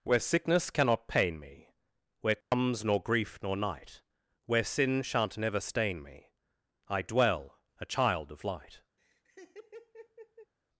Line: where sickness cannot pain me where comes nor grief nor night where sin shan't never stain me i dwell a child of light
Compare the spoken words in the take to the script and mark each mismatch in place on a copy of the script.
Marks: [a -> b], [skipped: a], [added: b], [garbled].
where sickness cannot pain me where comes nor grief nor night where sin shan't never stain me i dwell a child of light